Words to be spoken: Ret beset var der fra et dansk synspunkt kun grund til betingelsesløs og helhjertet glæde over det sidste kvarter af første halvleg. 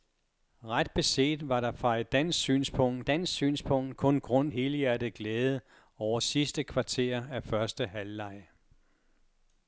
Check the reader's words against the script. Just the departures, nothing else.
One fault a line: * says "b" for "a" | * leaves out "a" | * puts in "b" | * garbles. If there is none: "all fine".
* puts in "dansk synspunkt"
* leaves out "til betingelsesløs og"
* leaves out "det"